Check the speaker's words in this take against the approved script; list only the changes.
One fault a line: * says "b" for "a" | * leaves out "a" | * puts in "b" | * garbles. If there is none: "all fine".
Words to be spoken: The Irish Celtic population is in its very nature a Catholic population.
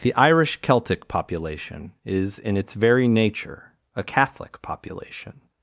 all fine